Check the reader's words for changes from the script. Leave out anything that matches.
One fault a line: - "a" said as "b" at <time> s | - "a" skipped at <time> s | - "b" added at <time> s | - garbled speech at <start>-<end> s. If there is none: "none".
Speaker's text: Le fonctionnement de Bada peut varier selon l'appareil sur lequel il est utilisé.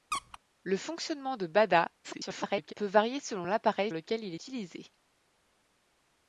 - garbled speech at 2.0-2.7 s
- "sur" skipped at 3.9 s
- "est" skipped at 4.3 s